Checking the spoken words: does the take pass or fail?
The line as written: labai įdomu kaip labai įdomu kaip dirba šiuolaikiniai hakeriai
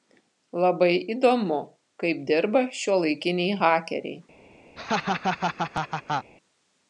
fail